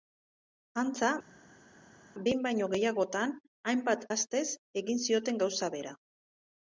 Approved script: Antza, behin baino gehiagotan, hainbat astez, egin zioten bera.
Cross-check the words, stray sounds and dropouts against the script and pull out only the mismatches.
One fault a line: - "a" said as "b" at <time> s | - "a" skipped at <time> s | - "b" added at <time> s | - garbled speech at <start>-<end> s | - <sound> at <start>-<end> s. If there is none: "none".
- "gauza" added at 5.5 s